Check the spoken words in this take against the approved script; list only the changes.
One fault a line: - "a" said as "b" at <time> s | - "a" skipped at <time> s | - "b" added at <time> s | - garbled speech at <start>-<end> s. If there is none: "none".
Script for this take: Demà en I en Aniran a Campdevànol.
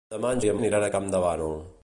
none